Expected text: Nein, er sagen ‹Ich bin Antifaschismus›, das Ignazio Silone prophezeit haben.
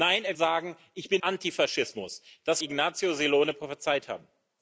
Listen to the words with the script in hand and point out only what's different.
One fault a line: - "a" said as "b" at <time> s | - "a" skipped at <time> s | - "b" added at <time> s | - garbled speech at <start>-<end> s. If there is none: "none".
none